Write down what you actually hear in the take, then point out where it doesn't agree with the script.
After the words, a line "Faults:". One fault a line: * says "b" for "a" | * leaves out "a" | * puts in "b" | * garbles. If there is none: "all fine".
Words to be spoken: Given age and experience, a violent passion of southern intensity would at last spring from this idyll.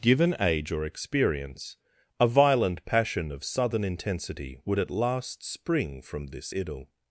Given age or experience, a violent passion of southern intensity would at last spring from this idyll.
Faults:
* says "or" for "and"